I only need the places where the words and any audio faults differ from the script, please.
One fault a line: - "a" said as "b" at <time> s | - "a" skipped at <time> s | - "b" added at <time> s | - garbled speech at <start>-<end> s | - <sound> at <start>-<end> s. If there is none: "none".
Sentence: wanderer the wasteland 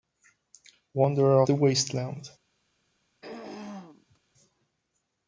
- throat clearing at 3.2-4.2 s